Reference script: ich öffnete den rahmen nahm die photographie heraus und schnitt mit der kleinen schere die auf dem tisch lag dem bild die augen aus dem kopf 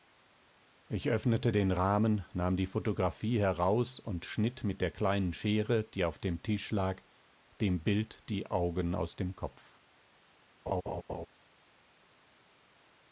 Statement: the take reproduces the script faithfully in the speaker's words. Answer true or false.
true